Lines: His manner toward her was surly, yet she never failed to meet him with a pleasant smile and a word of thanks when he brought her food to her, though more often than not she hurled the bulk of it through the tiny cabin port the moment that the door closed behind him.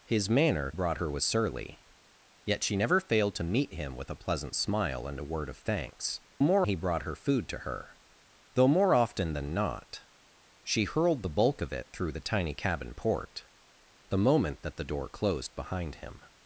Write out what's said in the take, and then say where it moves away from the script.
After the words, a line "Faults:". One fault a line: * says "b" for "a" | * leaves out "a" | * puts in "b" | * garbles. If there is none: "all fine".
His manner brought her was surly, yet she never failed to meet him with a pleasant smile and a word of thanks more he brought her food to her, though more often than not she hurled the bulk of it through the tiny cabin port the moment that the door closed behind him.
Faults:
* says "brought" for "toward"
* says "more" for "when"